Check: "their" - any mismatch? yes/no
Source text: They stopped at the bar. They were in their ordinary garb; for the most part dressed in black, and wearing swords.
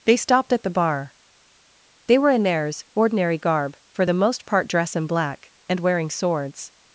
yes